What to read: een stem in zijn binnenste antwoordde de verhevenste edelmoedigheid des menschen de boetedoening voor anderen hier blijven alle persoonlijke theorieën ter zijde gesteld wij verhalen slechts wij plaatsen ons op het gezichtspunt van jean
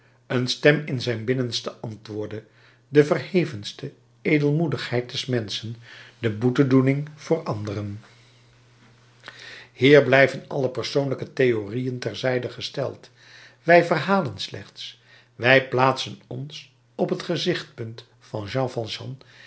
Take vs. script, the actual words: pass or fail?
pass